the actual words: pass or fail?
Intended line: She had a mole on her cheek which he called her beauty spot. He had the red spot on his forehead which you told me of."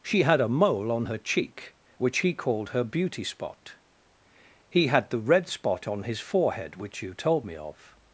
pass